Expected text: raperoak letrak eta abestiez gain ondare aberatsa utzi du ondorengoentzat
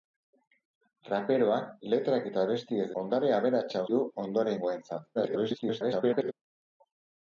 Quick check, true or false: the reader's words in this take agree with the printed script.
false